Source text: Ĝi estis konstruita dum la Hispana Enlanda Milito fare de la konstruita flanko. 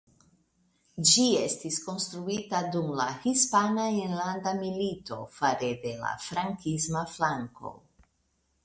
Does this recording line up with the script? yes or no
no